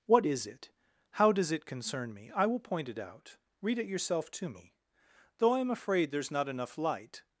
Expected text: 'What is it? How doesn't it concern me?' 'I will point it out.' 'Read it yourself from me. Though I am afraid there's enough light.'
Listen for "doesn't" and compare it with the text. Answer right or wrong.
wrong